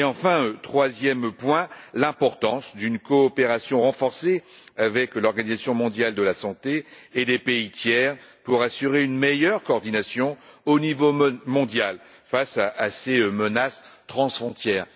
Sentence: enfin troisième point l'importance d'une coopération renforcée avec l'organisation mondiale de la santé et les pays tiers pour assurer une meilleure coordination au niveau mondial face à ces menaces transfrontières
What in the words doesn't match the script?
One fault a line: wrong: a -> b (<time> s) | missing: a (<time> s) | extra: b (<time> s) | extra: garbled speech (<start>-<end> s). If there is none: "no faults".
no faults